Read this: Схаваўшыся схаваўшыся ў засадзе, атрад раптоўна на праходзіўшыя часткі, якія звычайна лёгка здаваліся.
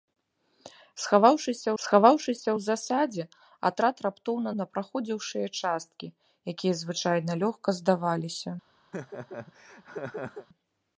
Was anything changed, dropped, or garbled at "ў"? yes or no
no